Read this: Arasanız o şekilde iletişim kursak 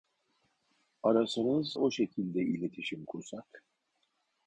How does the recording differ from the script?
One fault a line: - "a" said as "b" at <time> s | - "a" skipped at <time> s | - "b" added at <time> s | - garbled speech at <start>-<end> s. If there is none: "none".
none